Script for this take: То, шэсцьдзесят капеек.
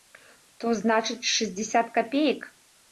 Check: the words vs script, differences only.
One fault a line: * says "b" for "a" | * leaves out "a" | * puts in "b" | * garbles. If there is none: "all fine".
* puts in "значыць"